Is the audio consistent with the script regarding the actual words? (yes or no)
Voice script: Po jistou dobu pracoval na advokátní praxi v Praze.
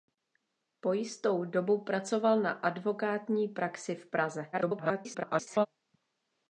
no